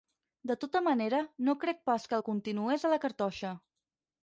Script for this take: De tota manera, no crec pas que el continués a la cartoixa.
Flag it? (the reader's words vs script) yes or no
no